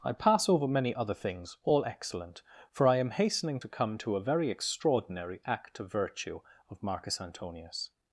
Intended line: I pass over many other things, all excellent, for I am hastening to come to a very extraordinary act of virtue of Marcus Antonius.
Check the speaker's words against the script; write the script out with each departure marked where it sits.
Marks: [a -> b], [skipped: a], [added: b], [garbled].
I pass over many other things, all excellent, for I am hastening to come to a very extraordinary act of virtue of Marcus Antonius.